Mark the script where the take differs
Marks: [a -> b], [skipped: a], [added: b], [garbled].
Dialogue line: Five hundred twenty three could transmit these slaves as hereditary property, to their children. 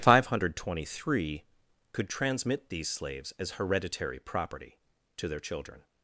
Five hundred twenty three could transmit these slaves as hereditary property, to their children.